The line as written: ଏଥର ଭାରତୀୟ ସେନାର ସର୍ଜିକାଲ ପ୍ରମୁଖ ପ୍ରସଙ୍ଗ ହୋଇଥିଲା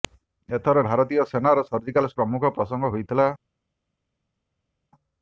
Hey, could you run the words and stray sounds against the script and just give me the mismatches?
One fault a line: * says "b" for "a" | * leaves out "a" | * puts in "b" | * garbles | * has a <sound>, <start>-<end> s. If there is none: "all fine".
all fine